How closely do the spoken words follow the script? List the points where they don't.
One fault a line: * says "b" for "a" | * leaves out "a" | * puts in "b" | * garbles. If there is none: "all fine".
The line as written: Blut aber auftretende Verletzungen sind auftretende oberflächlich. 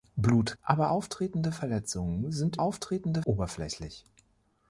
all fine